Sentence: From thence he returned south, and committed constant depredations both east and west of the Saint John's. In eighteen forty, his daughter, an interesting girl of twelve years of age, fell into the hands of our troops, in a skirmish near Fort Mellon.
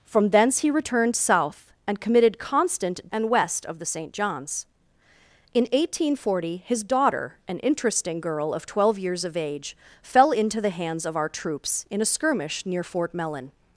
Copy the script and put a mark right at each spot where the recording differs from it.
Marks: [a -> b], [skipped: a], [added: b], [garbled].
From thence he returned south, and committed constant [skipped: depredations both east] and west of the Saint John's. In eighteen forty, his daughter, an interesting girl of twelve years of age, fell into the hands of our troops, in a skirmish near Fort Mellon.